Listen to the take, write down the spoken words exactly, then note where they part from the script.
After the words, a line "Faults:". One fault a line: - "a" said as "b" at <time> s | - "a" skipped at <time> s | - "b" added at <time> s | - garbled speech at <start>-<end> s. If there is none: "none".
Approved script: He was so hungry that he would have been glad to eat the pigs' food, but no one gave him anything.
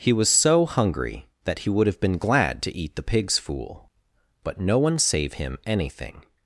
He was so hungry that he would have been glad to eat the pigs' fool, but no one save him anything.
Faults:
- "food" said as "fool" at 3.4 s
- "gave" said as "save" at 5.0 s